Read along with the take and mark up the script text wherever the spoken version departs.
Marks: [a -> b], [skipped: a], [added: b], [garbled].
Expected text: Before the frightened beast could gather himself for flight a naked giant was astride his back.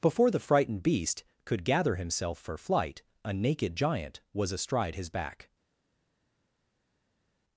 Before the frightened beast could gather himself for flight a naked giant was astride his back.